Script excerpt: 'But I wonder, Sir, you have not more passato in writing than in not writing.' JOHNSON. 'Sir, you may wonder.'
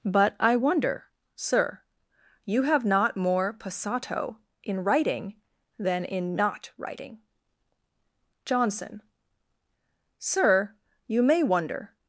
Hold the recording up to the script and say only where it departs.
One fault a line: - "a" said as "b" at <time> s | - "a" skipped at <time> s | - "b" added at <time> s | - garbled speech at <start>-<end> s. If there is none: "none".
none